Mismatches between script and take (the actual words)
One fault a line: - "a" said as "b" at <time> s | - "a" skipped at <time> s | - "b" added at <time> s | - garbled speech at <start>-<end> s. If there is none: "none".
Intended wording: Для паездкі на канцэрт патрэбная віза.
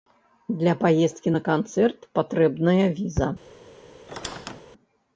none